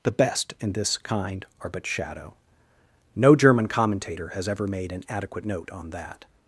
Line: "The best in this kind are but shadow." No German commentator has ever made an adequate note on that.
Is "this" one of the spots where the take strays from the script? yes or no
no